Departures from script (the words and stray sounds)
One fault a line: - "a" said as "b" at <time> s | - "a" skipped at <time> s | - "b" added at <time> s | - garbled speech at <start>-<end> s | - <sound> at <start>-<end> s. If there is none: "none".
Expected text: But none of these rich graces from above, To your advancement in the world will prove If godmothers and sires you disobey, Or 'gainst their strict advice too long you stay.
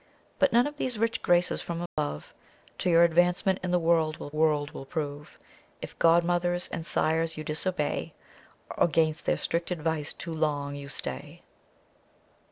- dropout at 1.9-2.0 s
- "world will" added at 4.3 s